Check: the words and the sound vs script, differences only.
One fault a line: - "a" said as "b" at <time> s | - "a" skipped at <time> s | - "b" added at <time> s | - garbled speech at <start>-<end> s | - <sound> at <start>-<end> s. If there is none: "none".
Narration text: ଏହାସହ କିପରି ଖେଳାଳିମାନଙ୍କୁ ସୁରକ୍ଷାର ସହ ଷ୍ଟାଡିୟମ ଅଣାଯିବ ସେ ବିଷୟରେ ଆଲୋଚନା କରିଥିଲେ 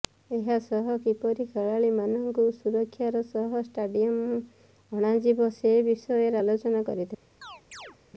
- chirp at 7.4-8.0 s